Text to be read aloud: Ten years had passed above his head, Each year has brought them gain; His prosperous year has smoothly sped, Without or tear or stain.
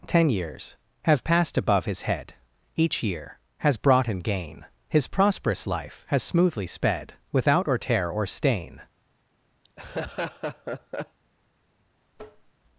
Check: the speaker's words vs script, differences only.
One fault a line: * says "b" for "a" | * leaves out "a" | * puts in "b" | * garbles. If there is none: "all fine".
* says "have" for "had"
* says "him" for "them"
* says "life" for "year"